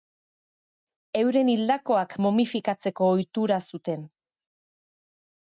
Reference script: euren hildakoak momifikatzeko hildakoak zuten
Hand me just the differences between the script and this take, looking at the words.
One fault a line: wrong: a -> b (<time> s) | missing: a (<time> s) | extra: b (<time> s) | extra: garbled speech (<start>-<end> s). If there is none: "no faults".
wrong: hildakoak -> ohitura (3.2 s)